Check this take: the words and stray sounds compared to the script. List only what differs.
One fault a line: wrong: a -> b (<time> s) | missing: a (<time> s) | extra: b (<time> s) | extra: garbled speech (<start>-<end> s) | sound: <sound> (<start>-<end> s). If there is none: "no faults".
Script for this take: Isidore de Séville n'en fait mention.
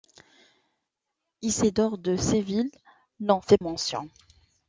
no faults